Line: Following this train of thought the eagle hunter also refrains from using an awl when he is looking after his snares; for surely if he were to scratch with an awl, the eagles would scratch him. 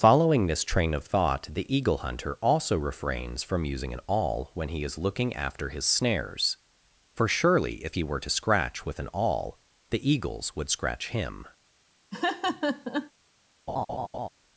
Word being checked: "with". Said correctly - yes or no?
yes